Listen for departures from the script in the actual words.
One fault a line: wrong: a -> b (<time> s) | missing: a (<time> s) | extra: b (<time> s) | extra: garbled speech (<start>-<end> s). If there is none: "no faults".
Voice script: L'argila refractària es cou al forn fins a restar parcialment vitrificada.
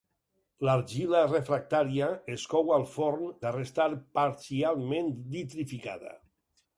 missing: fins (3.4 s)